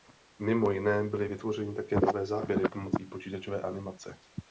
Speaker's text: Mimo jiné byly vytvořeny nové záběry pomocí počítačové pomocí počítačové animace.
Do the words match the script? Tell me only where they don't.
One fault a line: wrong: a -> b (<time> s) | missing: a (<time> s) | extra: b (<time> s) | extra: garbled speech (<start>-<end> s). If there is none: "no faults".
extra: také (1.7 s)
missing: pomocí počítačové (3.6 s)